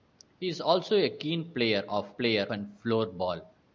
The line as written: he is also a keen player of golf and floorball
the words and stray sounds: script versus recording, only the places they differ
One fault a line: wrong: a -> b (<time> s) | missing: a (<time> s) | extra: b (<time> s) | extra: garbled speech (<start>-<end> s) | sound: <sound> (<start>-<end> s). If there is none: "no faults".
wrong: golf -> player (2.2 s)